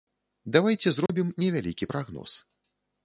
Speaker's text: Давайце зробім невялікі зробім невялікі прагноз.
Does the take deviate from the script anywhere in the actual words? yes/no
yes